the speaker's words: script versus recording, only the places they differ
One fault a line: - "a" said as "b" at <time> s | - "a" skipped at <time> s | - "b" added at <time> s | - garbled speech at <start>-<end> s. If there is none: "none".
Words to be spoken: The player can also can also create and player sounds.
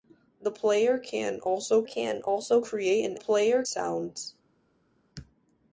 none